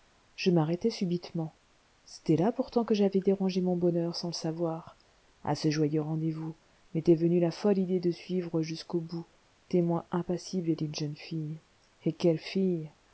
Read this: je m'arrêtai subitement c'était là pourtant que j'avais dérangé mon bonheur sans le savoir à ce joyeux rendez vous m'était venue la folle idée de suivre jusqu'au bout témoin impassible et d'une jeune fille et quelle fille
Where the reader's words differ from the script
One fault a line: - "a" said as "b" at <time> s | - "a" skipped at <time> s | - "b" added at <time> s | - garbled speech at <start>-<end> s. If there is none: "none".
none